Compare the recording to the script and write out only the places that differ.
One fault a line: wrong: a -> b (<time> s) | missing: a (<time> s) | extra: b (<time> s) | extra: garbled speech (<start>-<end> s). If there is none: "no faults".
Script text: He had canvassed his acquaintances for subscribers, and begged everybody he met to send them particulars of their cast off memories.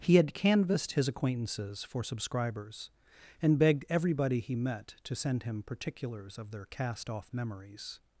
wrong: them -> him (5.4 s)